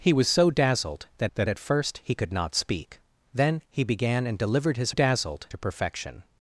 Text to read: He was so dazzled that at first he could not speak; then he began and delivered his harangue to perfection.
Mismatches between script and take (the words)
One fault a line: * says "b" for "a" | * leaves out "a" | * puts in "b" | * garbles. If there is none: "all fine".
* puts in "that"
* says "dazzled" for "harangue"